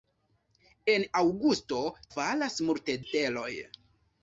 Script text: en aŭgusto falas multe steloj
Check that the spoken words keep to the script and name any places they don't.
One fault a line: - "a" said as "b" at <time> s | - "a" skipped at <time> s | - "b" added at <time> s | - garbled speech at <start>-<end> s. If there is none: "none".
none